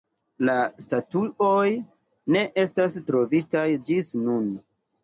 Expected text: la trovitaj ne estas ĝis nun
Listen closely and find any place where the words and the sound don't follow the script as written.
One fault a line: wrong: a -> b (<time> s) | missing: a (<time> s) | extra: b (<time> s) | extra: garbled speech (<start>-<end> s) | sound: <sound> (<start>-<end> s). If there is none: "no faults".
wrong: trovitaj -> statuoj (0.8 s)
extra: trovitaj (3.1 s)